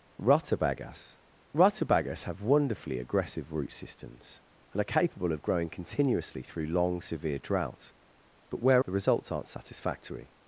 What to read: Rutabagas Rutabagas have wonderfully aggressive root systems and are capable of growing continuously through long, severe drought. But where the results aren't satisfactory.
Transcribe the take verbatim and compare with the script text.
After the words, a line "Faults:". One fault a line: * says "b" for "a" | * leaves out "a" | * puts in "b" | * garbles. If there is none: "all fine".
Rutabagas Rutabagas have wonderfully aggressive root systems and are capable of growing continuously through long, severe drought. But where the results aren't satisfactory.
Faults:
all fine